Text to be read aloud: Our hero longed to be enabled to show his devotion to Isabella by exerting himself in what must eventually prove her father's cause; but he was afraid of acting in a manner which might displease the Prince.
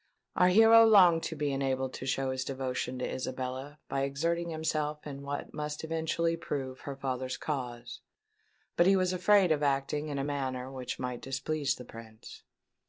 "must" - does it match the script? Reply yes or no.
yes